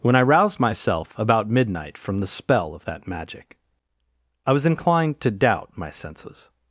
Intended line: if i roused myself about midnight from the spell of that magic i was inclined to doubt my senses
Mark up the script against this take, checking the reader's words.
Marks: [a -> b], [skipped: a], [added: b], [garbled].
[if -> when] i roused myself about midnight from the spell of that magic i was inclined to doubt my senses